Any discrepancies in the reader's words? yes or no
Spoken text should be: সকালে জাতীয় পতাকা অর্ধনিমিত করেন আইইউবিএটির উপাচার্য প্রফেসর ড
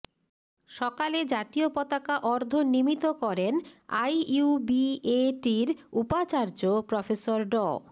no